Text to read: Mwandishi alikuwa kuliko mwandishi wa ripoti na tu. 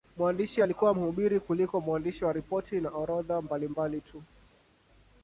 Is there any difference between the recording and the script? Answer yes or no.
yes